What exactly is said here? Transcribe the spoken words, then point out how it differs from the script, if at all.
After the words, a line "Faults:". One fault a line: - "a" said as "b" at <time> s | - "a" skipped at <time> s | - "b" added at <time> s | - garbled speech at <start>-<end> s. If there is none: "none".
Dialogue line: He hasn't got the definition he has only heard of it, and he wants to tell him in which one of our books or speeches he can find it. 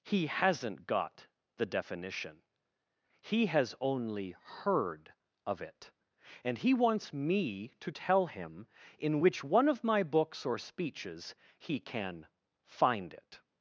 He hasn't got the definition he has only heard of it, and he wants me to tell him in which one of my books or speeches he can find it.
Faults:
- "me" added at 7.1 s
- "our" said as "my" at 9.8 s